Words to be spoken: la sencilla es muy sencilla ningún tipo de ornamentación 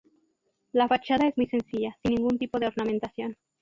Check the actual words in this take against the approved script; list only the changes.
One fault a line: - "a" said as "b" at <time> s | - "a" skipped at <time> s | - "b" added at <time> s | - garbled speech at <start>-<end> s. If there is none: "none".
- "sencilla" said as "fachada" at 0.9 s
- "sin" added at 2.0 s